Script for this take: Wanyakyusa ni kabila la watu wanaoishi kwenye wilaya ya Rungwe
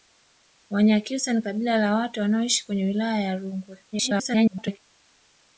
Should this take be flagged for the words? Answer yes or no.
yes